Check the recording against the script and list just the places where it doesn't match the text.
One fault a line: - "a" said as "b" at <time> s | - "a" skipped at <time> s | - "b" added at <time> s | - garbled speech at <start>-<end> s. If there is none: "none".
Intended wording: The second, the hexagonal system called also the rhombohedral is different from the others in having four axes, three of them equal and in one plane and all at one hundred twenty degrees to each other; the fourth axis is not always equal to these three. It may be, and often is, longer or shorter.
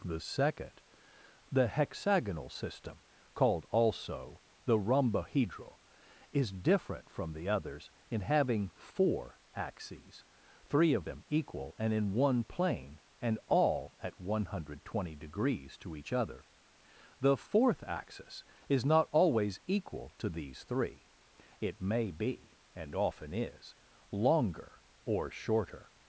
none